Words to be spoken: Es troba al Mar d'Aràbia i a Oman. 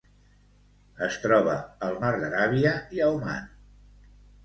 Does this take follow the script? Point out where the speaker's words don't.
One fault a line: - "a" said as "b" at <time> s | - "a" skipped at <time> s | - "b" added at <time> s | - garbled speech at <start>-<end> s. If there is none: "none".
none